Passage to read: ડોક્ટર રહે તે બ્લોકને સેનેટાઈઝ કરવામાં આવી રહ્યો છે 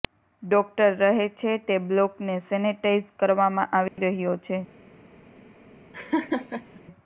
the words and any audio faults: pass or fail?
fail